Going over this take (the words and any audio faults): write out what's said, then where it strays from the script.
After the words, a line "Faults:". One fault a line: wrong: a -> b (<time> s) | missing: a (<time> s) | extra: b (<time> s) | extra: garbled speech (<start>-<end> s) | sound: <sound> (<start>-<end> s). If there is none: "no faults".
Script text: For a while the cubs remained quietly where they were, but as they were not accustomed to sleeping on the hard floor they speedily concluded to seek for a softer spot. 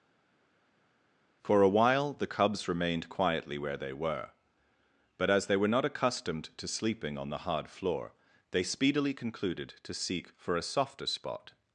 For a while the cubs remained quietly where they were, but as they were not accustomed to sleeping on the hard floor they speedily concluded to seek for a softer spot.
Faults:
no faults